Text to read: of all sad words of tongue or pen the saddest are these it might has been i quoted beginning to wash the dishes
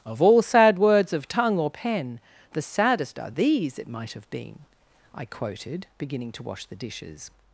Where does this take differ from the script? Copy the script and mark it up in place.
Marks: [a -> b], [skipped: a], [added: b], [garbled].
of all sad words of tongue or pen the saddest are these it might [has -> have] been i quoted beginning to wash the dishes